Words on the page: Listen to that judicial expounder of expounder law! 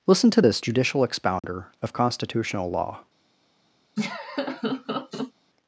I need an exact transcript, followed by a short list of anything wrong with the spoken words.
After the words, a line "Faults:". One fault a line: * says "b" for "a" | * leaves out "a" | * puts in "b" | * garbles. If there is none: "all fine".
Listen to this judicial expounder of constitutional law!
Faults:
* says "this" for "that"
* says "constitutional" for "expounder"